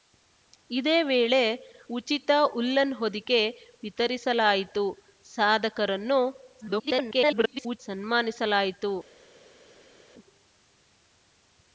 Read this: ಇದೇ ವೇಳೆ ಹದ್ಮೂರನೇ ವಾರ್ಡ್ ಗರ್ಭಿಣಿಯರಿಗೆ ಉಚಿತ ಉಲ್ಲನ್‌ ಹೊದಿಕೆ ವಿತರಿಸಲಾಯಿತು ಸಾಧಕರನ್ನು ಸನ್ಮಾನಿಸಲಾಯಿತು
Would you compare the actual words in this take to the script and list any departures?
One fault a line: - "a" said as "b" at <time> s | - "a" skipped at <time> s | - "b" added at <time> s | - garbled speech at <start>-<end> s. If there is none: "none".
- "ಹದ್ಮೂರನೇ ವಾರ್ಡ್ ಗರ್ಭಿಣಿಯರಿಗೆ" skipped at 1.4 s
- garbled speech at 6.6-7.8 s